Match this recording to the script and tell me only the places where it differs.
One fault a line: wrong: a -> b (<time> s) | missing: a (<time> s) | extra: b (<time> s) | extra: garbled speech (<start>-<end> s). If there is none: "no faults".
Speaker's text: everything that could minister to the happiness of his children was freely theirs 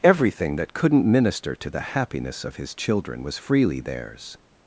wrong: could -> couldn't (0.7 s)